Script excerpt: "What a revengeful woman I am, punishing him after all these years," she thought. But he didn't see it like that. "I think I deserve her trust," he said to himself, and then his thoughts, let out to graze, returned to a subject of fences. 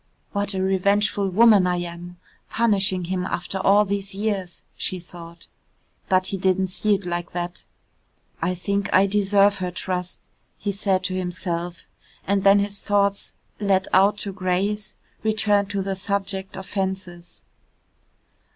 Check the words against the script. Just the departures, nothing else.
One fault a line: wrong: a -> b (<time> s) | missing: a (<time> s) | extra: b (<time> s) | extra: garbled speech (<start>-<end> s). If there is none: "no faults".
wrong: a -> the (15.8 s)